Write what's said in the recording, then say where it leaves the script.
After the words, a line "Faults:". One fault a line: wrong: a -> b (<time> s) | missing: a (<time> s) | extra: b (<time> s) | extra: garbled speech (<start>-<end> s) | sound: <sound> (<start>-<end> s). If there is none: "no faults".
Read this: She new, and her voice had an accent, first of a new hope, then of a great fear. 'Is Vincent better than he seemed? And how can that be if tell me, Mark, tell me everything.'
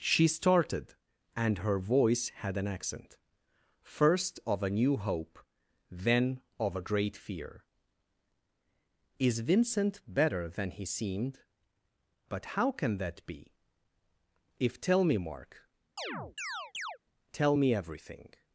She started, and her voice had an accent, first of a new hope, then of a great fear. 'Is Vincent better than he seemed? But how can that be if tell me, Mark, tell me everything.'
Faults:
wrong: new -> started (0.3 s)
wrong: And -> But (12.3 s)
sound: chirp (16.0-17.0 s)